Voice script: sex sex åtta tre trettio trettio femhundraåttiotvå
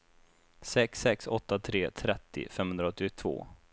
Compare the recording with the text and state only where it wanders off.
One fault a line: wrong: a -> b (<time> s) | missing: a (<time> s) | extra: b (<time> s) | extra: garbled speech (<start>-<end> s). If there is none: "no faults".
missing: trettio (2.5 s)